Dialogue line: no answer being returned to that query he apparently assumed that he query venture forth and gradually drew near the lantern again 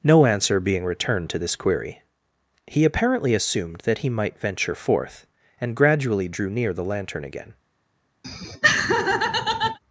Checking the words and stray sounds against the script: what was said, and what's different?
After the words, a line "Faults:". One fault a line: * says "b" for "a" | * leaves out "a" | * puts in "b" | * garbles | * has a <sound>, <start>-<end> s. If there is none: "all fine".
no answer being returned to this query he apparently assumed that he might venture forth and gradually drew near the lantern again
Faults:
* says "this" for "that"
* says "might" for "query"
* has a laugh, 8.2-9.8 s